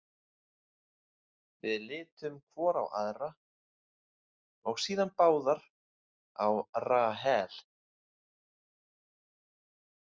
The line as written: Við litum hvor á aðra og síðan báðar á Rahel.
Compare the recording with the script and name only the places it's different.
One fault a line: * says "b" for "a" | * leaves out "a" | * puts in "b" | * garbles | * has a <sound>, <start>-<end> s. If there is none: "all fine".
all fine